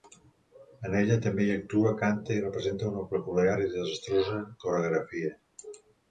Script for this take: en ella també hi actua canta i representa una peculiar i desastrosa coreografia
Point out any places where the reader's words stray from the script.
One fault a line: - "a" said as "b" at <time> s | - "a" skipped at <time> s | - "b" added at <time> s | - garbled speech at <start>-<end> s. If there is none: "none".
none